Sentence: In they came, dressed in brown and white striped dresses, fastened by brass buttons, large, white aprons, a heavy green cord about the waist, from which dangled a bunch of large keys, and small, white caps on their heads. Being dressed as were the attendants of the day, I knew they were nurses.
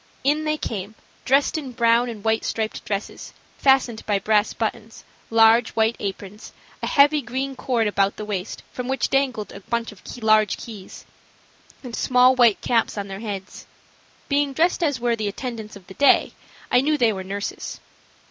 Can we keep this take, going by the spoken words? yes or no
yes